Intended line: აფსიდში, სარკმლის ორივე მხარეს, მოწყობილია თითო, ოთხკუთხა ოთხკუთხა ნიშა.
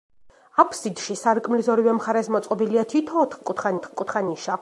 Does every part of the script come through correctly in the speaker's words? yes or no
yes